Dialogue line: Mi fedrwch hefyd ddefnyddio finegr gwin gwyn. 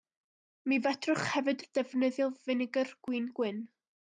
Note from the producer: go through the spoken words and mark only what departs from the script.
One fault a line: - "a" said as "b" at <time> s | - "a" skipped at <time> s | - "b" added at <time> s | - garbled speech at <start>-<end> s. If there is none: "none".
none